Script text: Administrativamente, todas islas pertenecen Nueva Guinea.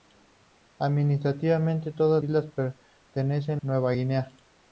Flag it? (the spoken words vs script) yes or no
no